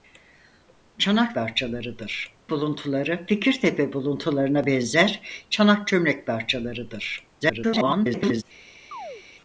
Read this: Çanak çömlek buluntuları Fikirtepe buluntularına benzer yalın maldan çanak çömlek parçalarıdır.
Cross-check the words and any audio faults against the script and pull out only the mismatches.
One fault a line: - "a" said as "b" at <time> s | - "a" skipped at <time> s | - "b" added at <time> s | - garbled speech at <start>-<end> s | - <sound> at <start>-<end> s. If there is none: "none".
- "çömlek" said as "parçalarıdır" at 1.3 s
- "yalın maldan" skipped at 5.2 s
- garbled speech at 7.4-8.4 s
- chirp at 8.9-9.2 s